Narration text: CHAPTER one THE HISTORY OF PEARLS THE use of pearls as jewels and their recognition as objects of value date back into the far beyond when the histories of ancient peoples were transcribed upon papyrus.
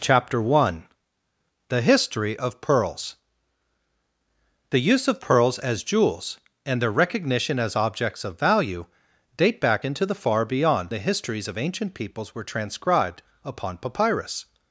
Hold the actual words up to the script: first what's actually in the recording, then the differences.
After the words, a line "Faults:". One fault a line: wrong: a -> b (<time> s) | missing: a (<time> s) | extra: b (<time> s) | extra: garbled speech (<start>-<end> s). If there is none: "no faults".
CHAPTER one THE HISTORY OF PEARLS THE use of pearls as jewels and their recognition as objects of value date back into the far beyond the histories of ancient peoples were transcribed upon papyrus.
Faults:
missing: when (10.9 s)